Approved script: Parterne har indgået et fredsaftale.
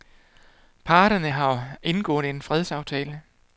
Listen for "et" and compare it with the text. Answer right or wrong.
wrong